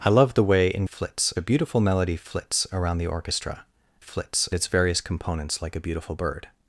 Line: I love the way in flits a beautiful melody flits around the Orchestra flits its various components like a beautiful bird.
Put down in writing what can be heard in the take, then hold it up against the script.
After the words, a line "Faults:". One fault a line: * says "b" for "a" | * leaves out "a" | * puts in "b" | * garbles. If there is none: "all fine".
I love the way in flits a beautiful melody flits around the Orchestra flits its various components like a beautiful bird.
Faults:
all fine